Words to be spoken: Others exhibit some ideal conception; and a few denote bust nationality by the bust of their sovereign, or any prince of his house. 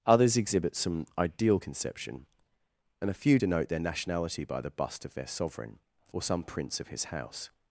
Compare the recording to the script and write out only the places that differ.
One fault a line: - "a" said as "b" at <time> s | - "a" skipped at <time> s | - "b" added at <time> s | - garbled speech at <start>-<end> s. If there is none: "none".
- "bust" said as "their" at 3.7 s
- "any" said as "some" at 6.2 s